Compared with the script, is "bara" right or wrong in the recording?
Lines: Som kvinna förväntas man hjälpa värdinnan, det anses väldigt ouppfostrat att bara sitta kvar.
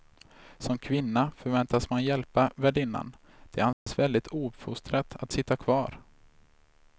wrong